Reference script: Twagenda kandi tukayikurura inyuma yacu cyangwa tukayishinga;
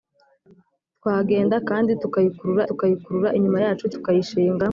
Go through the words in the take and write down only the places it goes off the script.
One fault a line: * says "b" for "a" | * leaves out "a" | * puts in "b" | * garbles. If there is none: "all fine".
* puts in "tukayikurura"
* leaves out "cyangwa"